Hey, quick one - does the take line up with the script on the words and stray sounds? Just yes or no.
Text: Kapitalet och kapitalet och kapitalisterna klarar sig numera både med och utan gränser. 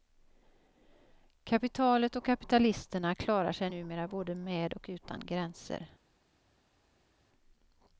no